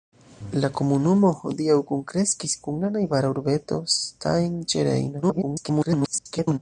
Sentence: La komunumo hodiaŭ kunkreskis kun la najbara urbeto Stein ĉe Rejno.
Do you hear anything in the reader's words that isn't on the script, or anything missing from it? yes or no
yes